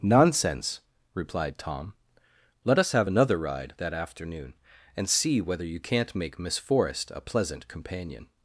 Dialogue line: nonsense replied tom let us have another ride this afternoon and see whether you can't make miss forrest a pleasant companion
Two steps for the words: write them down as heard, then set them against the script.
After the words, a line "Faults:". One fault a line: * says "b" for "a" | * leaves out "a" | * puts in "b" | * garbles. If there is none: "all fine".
nonsense replied tom let us have another ride that afternoon and see whether you can't make miss forrest a pleasant companion
Faults:
* says "that" for "this"